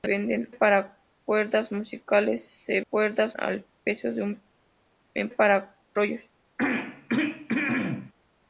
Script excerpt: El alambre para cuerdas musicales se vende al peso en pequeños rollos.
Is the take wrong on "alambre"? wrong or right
wrong